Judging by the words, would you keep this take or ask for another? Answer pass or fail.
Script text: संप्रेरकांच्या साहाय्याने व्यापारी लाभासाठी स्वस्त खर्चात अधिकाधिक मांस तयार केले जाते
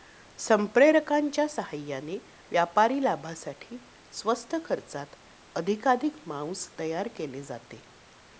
pass